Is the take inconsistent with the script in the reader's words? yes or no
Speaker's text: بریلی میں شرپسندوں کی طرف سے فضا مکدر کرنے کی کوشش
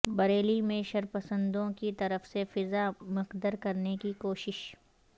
no